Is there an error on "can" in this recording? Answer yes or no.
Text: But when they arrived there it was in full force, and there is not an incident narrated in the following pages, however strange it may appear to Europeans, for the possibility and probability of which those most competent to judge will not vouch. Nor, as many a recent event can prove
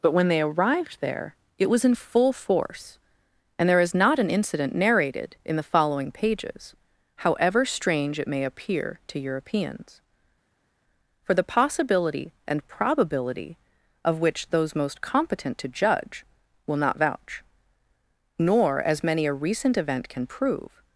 no